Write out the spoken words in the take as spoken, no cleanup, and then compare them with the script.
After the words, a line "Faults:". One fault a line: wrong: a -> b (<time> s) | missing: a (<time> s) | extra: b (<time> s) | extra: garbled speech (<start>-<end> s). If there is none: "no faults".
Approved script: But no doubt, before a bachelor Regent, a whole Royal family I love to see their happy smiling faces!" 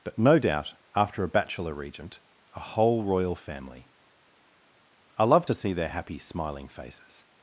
But no doubt, after a bachelor Regent, a whole Royal family I love to see their happy smiling faces!"
Faults:
wrong: before -> after (0.9 s)